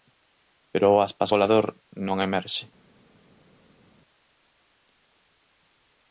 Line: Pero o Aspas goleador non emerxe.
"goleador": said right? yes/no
yes